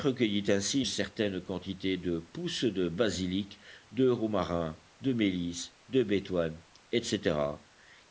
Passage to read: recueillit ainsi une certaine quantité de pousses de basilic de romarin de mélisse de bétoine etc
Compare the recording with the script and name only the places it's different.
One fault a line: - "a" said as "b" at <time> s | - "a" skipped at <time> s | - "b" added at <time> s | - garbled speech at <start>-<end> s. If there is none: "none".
- "une" skipped at 0.8 s